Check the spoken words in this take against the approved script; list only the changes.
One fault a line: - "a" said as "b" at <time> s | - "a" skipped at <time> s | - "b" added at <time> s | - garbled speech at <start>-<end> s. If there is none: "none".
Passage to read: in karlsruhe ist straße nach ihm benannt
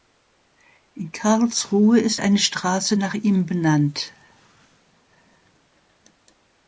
- "eine" added at 2.2 s